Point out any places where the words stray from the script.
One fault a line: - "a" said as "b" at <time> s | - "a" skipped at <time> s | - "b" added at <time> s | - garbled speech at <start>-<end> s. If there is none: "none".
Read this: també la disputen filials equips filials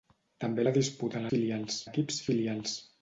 none